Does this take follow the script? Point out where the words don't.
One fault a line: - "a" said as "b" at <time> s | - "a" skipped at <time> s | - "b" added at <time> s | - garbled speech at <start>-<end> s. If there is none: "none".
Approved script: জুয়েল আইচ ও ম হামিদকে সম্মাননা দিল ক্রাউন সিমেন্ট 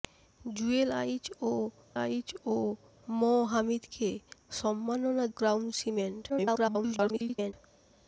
- "আইচ ও" added at 2.0 s
- "দিল" skipped at 5.2 s
- garbled speech at 6.3-7.5 s